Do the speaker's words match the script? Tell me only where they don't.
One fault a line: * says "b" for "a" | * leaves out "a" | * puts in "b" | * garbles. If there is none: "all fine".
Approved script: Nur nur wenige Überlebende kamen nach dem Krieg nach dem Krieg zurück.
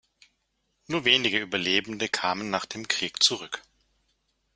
* leaves out "nur"
* leaves out "nach dem Krieg"